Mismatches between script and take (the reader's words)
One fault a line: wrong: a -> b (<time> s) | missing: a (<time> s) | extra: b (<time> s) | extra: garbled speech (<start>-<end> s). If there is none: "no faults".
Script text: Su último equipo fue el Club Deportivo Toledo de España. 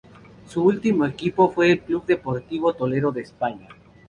no faults